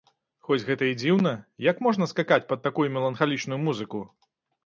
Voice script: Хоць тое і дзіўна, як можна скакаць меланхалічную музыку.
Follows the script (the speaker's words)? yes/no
no